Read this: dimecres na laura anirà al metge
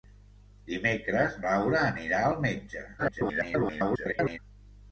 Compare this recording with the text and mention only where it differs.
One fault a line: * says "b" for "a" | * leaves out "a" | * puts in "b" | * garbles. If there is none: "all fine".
* leaves out "na"
* garbles